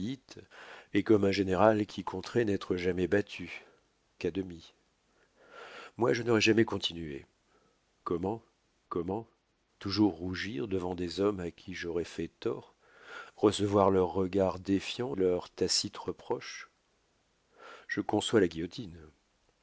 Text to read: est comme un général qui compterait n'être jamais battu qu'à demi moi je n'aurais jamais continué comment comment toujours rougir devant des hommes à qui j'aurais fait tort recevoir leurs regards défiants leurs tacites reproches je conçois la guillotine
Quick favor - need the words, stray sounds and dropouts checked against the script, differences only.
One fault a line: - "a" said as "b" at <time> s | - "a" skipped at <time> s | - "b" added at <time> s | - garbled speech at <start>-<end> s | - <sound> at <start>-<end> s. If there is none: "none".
none